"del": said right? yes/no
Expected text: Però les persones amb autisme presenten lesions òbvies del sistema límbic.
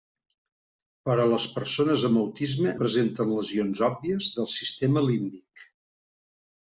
yes